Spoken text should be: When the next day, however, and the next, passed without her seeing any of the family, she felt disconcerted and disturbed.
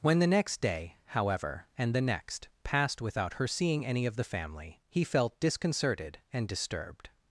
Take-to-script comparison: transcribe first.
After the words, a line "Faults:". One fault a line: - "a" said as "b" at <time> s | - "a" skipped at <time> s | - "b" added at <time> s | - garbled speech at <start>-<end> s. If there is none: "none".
When the next day, however, and the next, passed without her seeing any of the family, he felt disconcerted and disturbed.
Faults:
- "she" said as "he" at 4.9 s